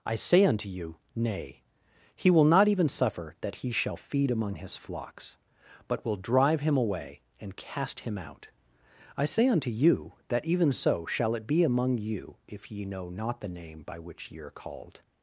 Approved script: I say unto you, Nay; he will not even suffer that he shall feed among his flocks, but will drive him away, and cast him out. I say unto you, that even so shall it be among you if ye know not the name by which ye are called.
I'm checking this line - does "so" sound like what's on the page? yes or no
yes